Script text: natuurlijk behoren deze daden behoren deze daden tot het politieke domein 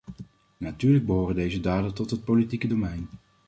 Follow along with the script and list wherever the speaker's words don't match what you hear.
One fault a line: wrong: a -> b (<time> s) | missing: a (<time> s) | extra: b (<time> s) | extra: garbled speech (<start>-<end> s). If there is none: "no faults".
missing: behoren deze daden (1.9 s)